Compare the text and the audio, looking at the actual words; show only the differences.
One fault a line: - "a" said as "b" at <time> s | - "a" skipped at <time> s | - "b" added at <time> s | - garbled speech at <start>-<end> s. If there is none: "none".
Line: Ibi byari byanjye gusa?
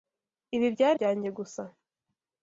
none